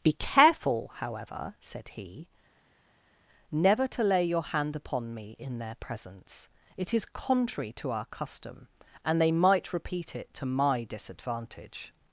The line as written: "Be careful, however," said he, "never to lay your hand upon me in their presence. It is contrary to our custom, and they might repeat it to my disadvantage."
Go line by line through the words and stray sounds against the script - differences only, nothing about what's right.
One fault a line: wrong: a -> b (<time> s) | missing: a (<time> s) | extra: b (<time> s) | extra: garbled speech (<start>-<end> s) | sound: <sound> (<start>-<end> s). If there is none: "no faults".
no faults